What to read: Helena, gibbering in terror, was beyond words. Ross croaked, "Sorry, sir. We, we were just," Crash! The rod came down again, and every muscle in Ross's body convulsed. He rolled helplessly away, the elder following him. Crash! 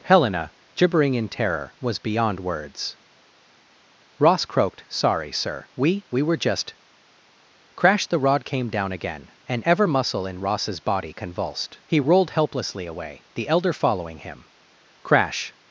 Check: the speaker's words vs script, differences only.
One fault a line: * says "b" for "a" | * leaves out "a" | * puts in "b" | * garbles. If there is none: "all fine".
* says "ever" for "every"